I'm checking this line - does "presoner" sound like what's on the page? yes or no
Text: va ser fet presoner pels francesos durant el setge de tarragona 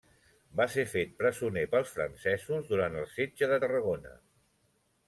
yes